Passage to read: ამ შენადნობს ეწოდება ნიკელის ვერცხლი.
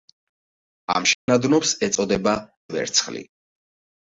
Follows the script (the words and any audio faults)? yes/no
no